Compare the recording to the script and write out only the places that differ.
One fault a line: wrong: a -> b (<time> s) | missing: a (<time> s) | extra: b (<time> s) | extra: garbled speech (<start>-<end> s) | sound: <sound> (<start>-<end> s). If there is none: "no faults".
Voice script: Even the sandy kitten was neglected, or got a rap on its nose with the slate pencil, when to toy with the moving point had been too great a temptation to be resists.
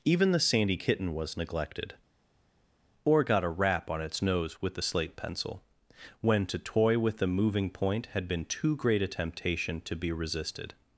wrong: resists -> resisted (10.1 s)